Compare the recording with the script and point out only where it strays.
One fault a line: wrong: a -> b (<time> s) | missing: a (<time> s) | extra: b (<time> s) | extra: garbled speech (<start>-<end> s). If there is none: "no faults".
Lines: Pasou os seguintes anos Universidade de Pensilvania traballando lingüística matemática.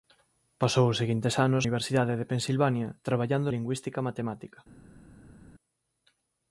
no faults